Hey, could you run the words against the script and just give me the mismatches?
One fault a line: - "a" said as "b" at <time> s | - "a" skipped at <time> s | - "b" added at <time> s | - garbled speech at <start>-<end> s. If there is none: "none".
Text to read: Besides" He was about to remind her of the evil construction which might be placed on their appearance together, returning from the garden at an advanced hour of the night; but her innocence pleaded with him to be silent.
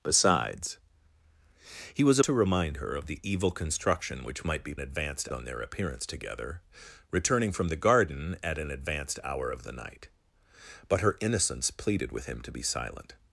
- "about" skipped at 2.2 s
- "placed" said as "advanced" at 4.8 s